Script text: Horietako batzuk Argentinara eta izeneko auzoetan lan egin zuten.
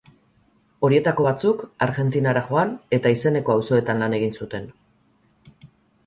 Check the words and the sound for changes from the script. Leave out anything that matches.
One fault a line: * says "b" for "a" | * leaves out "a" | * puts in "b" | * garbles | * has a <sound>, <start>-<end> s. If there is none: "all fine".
* puts in "joan"